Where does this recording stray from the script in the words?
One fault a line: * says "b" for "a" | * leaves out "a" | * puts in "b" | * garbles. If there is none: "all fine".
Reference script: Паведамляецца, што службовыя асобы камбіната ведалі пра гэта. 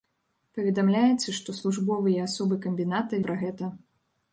* leaves out "ведалі"